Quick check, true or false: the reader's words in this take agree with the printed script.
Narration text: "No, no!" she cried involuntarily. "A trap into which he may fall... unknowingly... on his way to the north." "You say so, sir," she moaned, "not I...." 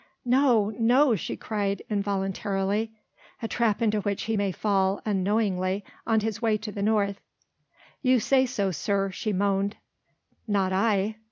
true